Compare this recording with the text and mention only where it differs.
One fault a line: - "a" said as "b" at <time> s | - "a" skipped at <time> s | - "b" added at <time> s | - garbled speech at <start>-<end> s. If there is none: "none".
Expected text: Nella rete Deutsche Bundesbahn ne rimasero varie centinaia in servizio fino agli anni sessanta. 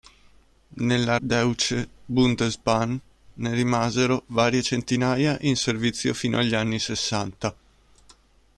- "rete" skipped at 1.2 s